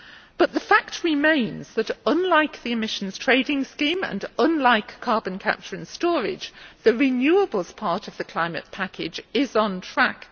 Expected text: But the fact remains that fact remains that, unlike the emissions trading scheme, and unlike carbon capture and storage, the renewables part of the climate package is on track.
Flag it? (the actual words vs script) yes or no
yes